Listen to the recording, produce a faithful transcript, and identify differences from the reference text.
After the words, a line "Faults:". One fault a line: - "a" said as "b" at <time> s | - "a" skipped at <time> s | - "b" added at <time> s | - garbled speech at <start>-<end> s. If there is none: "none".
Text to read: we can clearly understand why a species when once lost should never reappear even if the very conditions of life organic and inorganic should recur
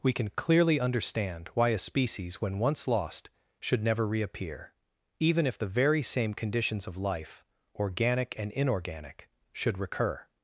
we can clearly understand why a species when once lost should never reappear even if the very same conditions of life organic and inorganic should recur
Faults:
- "same" added at 6.0 s